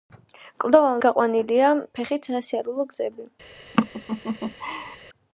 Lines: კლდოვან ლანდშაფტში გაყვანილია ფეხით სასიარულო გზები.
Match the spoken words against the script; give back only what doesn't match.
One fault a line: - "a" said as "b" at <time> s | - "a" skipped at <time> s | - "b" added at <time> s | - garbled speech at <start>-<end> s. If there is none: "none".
- "ლანდშაფტში" skipped at 1.0 s